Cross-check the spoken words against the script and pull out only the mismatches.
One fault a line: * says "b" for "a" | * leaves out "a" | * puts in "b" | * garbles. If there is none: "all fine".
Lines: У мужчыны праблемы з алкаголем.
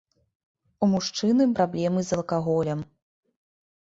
all fine